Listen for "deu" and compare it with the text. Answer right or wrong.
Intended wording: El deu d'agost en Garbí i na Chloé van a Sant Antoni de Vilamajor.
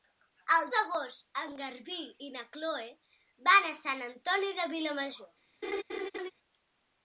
wrong